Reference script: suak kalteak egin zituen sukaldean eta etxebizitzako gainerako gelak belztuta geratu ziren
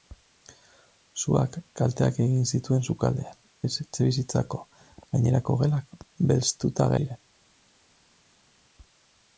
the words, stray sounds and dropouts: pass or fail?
fail